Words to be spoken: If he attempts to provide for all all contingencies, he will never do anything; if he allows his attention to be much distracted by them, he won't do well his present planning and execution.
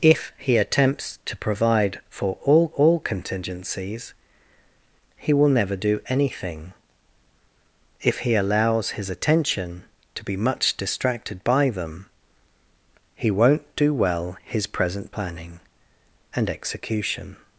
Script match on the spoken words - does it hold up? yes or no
yes